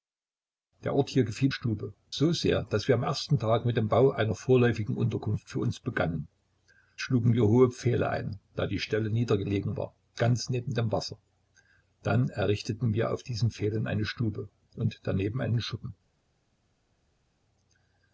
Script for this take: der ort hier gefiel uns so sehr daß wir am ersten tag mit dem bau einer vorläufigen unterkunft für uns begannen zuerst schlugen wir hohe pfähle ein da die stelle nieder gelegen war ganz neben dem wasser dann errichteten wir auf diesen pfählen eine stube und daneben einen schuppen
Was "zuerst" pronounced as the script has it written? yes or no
no